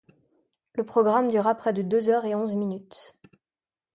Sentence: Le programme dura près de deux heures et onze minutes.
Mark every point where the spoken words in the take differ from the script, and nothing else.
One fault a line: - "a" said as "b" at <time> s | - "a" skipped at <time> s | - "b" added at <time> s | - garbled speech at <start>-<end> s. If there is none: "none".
none